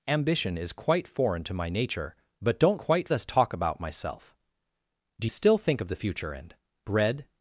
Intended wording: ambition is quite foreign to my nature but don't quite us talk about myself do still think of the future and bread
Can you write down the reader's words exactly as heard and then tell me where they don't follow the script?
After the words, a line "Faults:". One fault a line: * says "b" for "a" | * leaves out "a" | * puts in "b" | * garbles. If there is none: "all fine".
ambition is quite foreign to my nature but don't quite us talk about myself do still think of the future and bread
Faults:
all fine